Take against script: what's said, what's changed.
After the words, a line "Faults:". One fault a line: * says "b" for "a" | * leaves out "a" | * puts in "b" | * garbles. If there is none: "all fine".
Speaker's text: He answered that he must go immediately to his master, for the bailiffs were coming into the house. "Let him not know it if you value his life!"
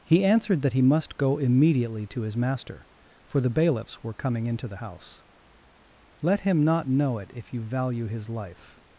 He answered that he must go immediately to his master, for the bailiffs were coming into the house. "Let him not know it if you value his life!"
Faults:
all fine